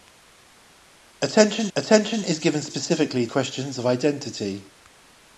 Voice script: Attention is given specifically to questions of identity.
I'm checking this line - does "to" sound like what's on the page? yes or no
no